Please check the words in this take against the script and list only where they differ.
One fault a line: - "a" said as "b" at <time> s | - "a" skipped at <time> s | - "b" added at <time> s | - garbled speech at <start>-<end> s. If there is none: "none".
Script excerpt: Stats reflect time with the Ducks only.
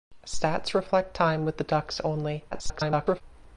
- garbled speech at 2.5-3.2 s